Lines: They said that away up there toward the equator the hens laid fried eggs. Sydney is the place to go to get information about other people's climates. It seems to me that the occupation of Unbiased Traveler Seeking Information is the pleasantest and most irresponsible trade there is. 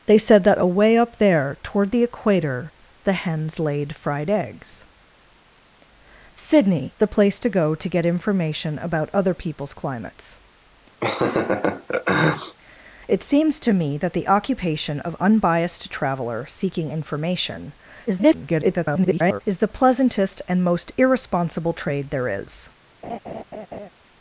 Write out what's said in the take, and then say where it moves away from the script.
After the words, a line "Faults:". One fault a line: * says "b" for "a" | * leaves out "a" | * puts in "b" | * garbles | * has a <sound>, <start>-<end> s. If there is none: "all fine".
They said that away up there toward the equator the hens laid fried eggs. Sydney the place to go to get information about other people's climates. It seems to me that the occupation of Unbiased Traveler Seeking Information [garbled] is the pleasantest and most irresponsible trade there is.
Faults:
* leaves out "is"
* has a laugh, 11.0-12.6 s
* garbles
* has a laugh, 23.0-23.9 s